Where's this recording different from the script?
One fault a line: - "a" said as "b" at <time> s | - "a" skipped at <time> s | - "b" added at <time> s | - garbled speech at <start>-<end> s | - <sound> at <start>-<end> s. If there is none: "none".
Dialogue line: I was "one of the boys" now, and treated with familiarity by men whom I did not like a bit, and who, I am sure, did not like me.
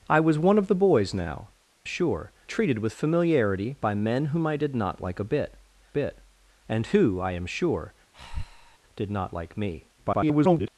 - "and" said as "sure" at 1.8 s
- "bit" added at 5.9 s
- breath at 8.1-8.8 s
- garbled speech at 10.0-10.7 s